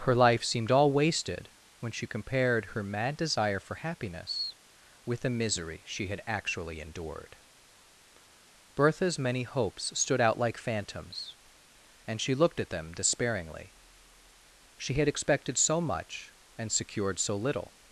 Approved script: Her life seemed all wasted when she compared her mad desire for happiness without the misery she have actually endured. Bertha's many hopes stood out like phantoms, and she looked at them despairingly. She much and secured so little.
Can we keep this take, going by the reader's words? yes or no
no